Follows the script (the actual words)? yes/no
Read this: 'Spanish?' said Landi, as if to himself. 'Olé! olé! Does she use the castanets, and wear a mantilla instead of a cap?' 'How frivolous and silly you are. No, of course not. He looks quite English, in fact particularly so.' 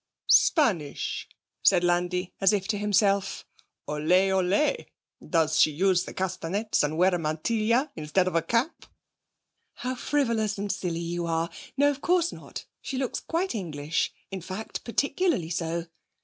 no